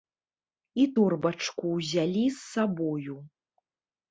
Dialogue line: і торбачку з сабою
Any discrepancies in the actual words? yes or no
yes